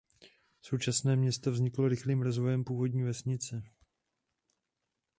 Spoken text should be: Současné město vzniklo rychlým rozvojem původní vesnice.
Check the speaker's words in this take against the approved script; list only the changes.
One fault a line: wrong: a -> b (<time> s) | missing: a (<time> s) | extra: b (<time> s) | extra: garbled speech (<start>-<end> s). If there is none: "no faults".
no faults